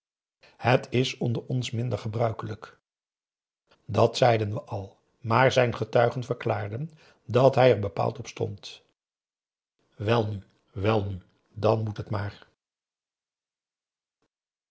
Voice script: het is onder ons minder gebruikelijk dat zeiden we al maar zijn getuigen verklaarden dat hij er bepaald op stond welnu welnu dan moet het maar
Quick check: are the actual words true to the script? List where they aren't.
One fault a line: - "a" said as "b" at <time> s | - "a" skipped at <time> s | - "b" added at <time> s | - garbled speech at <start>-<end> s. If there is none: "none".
none